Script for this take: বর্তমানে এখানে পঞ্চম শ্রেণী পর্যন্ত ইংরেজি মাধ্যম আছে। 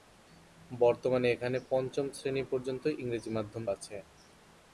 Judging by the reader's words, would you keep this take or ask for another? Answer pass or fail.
pass